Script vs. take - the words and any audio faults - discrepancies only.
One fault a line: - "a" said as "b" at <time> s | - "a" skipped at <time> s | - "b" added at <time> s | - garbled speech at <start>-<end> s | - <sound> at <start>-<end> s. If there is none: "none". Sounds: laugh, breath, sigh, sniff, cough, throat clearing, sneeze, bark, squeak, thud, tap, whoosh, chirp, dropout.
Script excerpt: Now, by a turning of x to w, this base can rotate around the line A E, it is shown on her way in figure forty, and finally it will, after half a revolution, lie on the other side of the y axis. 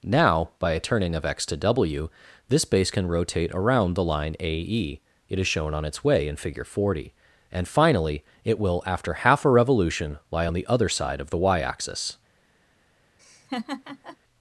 - "her" said as "its" at 5.8 s
- laugh at 13.2-14.2 s